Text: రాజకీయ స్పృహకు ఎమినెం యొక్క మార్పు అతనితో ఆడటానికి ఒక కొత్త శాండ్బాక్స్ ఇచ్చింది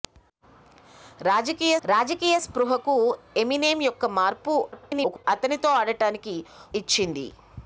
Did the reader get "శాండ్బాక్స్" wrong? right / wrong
wrong